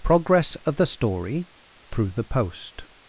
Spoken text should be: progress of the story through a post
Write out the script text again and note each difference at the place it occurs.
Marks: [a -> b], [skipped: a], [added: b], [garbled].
progress of the story through [a -> the] post